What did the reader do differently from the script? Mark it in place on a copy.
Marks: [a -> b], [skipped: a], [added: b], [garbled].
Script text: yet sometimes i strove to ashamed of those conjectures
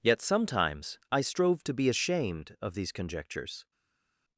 yet sometimes i strove to [added: be] ashamed of [those -> these] conjectures